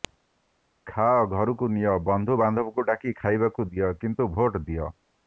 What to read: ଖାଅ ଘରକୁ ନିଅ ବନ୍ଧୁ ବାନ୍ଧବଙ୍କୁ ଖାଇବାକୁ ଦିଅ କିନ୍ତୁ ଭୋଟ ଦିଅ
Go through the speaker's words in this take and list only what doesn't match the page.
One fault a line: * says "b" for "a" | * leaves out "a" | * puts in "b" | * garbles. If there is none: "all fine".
* puts in "ଡାକି"